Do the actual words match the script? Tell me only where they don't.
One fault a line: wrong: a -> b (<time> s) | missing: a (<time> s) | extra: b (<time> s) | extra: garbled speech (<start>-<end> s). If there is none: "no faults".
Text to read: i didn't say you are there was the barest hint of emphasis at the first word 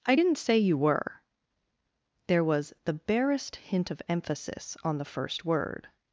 wrong: are -> were (0.8 s)
wrong: at -> on (4.8 s)